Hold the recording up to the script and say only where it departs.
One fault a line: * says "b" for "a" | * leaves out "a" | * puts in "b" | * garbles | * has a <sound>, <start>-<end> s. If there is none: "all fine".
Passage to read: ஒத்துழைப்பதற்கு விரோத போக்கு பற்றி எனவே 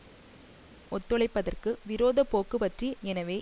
all fine